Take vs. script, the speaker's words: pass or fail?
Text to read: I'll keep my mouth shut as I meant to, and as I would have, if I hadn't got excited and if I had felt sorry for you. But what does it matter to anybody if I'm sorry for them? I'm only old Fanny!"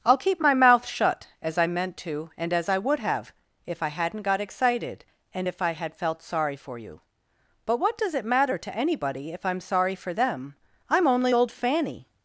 pass